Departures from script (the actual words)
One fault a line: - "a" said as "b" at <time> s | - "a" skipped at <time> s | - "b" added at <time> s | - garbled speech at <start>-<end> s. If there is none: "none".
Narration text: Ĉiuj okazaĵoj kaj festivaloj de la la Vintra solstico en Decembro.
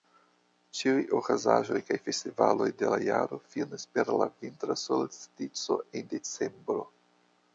- "jaro finas per" added at 3.1 s